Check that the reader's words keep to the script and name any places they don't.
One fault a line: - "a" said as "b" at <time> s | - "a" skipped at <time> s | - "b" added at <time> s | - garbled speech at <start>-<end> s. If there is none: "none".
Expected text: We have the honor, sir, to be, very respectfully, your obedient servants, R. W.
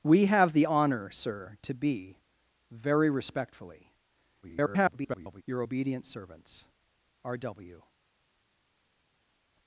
- garbled speech at 4.4-5.4 s